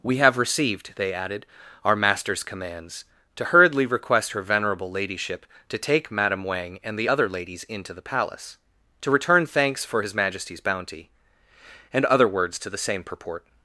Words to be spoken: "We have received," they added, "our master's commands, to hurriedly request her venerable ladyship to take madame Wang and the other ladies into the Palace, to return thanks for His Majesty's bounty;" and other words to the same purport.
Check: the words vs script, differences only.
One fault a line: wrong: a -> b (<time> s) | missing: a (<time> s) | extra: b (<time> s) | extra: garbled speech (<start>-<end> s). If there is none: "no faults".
no faults